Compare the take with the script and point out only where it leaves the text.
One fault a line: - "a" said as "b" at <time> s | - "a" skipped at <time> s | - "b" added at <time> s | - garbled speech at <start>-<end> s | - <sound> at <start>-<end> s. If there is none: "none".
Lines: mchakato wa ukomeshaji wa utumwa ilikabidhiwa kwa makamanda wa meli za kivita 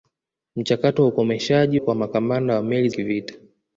- "wa utumwa ilikabidhiwa" skipped at 1.8 s
- "za" skipped at 2.9 s